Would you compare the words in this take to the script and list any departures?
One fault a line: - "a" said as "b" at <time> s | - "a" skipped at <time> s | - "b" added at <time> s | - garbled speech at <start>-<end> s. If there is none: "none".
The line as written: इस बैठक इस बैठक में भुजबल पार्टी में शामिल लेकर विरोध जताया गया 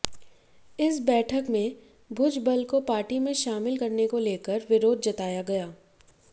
- "इस बैठक" skipped at 1.5 s
- "को" added at 2.6 s
- "करने को" added at 3.7 s